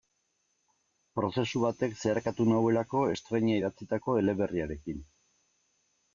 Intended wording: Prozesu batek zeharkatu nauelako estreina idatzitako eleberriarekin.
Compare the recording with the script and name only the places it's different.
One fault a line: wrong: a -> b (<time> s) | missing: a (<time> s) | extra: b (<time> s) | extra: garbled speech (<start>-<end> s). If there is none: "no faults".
no faults